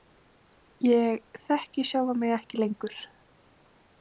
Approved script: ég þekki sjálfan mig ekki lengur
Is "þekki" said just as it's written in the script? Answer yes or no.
yes